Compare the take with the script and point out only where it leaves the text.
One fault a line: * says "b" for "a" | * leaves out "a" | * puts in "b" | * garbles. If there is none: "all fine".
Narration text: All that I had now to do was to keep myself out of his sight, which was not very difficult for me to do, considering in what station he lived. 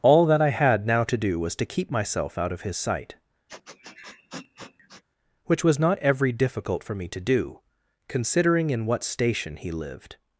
* says "every" for "very"